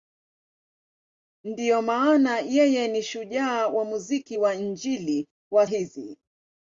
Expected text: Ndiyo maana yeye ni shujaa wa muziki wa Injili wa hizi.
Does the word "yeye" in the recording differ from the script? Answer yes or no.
no